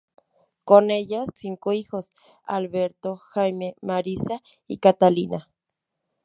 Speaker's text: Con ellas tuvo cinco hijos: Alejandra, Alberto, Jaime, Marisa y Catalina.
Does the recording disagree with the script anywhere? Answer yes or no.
yes